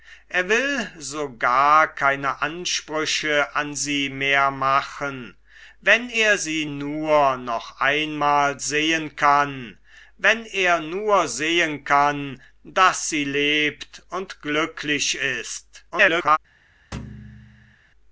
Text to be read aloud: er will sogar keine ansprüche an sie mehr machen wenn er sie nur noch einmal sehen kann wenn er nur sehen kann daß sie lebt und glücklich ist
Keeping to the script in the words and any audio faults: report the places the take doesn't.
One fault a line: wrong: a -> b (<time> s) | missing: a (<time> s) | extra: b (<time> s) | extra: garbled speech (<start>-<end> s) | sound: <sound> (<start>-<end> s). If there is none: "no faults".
extra: garbled speech (15.9-16.4 s)
sound: thud (16.9-17.8 s)